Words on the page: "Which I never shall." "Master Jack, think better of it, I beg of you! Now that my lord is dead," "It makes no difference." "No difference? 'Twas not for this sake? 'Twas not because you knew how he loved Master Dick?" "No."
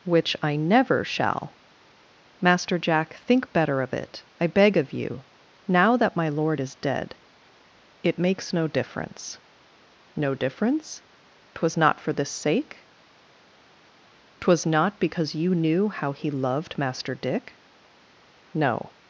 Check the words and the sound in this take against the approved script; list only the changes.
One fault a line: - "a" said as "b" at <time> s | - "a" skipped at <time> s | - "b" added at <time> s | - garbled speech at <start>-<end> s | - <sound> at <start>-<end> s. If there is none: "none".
none